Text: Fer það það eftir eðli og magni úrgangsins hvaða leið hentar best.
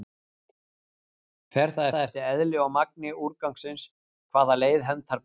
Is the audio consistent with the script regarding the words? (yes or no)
yes